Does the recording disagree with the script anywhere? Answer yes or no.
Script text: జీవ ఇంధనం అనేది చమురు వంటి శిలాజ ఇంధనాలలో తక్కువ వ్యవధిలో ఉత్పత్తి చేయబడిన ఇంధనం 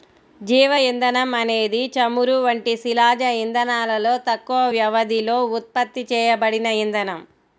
no